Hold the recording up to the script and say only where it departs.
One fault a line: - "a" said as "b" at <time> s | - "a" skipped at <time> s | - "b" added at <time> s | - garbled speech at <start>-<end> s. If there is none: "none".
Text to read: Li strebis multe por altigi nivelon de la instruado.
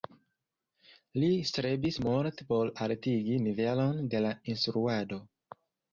none